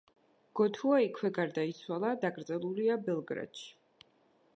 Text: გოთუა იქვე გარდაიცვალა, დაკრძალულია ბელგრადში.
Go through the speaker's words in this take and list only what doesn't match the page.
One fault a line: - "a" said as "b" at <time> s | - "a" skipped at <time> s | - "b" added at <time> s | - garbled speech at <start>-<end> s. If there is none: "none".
none